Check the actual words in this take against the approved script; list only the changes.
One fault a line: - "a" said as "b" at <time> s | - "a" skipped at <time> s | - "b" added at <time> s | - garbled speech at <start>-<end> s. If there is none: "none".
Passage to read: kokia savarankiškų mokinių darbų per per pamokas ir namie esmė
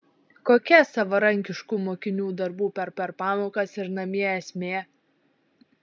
none